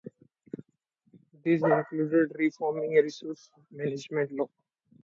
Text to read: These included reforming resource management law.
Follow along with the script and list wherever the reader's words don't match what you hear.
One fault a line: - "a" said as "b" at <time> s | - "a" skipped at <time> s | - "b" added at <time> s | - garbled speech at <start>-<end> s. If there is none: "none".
none